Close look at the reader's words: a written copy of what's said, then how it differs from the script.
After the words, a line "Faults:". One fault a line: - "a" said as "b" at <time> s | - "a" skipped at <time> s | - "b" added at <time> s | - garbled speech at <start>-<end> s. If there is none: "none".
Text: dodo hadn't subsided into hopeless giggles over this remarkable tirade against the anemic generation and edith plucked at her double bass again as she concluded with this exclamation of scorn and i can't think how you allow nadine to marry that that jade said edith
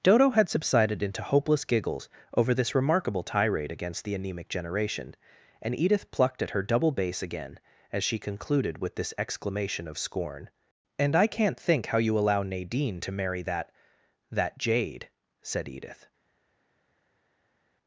dodo had subsided into hopeless giggles over this remarkable tirade against the anemic generation and edith plucked at her double bass again as she concluded with this exclamation of scorn and i can't think how you allow nadine to marry that that jade said edith
Faults:
- "hadn't" said as "had" at 0.3 s